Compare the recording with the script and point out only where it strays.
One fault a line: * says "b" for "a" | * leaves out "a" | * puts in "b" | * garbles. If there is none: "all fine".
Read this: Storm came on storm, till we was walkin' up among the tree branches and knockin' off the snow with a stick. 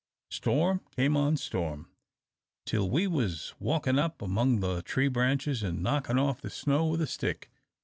all fine